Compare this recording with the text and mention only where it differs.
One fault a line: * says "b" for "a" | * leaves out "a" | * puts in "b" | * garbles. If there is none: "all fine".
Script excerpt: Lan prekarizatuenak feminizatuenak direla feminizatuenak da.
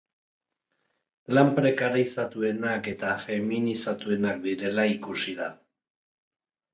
* puts in "eta"
* says "ikusi" for "feminizatuenak"